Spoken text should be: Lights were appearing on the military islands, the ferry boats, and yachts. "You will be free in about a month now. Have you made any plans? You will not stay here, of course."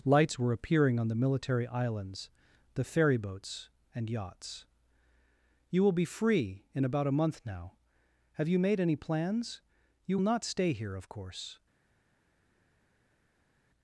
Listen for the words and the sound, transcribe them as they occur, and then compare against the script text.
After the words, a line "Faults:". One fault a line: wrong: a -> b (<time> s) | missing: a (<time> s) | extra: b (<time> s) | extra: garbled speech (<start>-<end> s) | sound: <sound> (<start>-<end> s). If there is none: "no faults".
Lights were appearing on the military islands, the ferry boats, and yachts. "You will be free in about a month now. Have you made any plans? You not stay here, of course."
Faults:
missing: will (10.2 s)